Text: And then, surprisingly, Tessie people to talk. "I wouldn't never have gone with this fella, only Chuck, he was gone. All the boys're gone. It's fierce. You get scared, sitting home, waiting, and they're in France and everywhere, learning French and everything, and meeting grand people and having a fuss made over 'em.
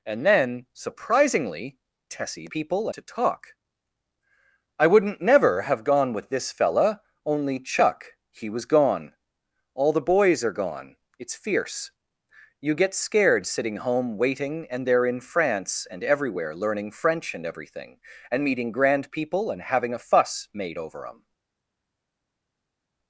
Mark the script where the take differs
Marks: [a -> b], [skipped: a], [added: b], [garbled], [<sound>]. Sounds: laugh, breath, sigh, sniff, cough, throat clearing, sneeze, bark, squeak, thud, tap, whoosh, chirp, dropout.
And then, surprisingly, Tessie people to talk. "I wouldn't never have gone with this fella, only Chuck, he was gone. All the boys're gone. It's fierce. You get scared, sitting home, waiting, and they're in France and everywhere, learning French and everything, and meeting grand people and having a fuss made over 'em.